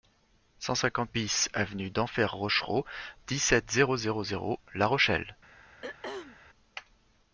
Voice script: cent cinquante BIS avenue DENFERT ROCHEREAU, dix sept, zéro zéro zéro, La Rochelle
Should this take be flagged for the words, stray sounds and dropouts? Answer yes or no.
yes